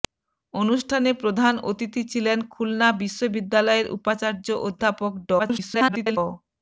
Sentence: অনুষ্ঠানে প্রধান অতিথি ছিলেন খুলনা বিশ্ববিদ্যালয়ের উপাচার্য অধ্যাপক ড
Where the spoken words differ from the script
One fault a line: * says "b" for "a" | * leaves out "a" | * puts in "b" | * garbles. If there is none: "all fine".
* garbles